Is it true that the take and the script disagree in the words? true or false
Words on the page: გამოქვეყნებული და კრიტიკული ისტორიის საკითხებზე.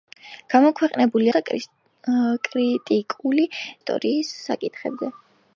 false